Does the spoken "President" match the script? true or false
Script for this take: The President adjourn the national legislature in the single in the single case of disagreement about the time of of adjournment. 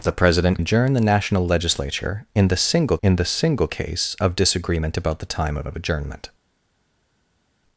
true